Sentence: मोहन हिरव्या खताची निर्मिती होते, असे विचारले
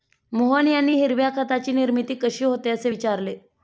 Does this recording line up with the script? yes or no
no